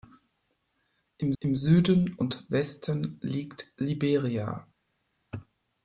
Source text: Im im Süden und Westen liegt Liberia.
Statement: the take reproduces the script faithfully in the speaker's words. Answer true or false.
true